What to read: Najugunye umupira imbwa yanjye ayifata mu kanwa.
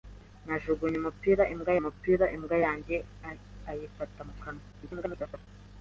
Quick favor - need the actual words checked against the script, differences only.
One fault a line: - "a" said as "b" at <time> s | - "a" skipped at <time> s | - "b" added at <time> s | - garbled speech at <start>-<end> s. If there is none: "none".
- "umupira imbwa" added at 1.8 s
- garbled speech at 4.7-5.5 s